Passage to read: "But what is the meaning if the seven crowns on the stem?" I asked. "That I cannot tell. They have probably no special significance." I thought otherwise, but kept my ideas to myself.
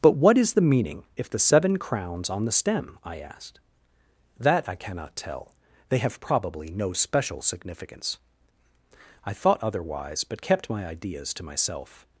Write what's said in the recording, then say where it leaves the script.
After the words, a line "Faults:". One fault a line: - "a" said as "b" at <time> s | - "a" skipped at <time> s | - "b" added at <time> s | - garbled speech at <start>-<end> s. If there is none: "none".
"But what is the meaning if the seven crowns on the stem?" I asked. "That I cannot tell. They have probably no special significance." I thought otherwise, but kept my ideas to myself.
Faults:
none